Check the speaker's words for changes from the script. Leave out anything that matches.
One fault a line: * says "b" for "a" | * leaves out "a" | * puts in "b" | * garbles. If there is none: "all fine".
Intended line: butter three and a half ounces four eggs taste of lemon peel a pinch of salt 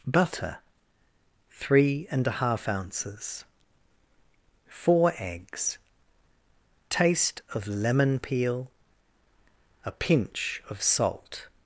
all fine